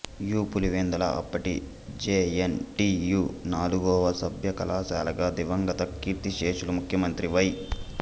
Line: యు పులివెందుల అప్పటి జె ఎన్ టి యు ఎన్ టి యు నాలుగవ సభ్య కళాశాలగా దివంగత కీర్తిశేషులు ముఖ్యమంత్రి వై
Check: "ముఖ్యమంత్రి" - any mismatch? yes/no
no